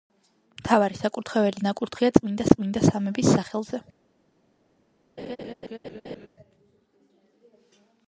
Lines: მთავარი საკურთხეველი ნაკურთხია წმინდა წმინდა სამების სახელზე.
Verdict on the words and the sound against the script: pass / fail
fail